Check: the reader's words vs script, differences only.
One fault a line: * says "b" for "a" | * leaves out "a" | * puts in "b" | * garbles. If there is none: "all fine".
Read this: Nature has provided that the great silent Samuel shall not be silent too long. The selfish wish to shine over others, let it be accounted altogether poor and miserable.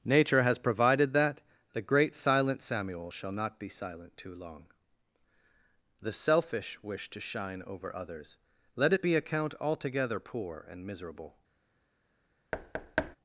* says "account" for "accounted"